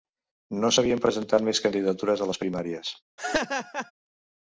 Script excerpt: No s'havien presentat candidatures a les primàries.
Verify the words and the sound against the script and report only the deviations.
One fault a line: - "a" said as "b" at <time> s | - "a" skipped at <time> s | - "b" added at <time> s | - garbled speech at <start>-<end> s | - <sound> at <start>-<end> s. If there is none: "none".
- "més" added at 1.5 s
- laugh at 3.2-3.9 s